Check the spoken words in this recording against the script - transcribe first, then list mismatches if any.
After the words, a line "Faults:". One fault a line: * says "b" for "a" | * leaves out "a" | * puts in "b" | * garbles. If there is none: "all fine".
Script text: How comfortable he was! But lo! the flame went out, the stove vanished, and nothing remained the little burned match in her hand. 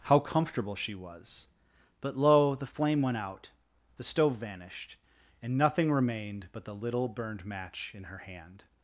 How comfortable she was! But lo! the flame went out, the stove vanished, and nothing remained but the little burned match in her hand.
Faults:
* says "she" for "he"
* puts in "but"